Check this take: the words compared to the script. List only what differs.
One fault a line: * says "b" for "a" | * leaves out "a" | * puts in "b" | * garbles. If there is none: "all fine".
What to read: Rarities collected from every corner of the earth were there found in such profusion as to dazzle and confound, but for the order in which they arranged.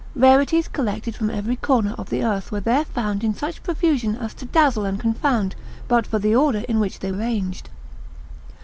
all fine